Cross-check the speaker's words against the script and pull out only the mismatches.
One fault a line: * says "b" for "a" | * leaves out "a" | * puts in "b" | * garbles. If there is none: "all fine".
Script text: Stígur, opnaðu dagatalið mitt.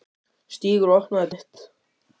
* leaves out "dagatalið"